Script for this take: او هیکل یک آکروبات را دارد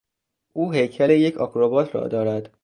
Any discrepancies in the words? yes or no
no